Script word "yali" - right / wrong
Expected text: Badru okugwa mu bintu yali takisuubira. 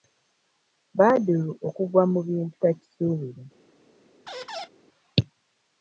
wrong